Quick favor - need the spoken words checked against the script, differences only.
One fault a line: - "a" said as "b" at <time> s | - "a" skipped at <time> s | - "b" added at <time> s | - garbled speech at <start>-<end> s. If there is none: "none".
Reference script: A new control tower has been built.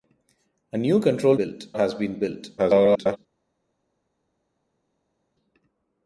- "tower" said as "built" at 1.4 s
- garbled speech at 2.6-3.2 s